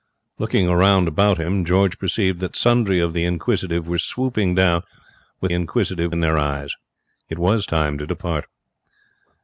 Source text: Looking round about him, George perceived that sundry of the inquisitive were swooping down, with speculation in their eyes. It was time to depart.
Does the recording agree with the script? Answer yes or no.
no